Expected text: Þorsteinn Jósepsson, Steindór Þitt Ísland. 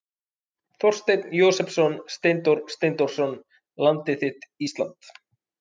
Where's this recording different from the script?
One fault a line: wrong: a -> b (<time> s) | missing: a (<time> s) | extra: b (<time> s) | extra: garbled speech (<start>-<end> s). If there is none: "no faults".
extra: Steindórsson Landið (2.8 s)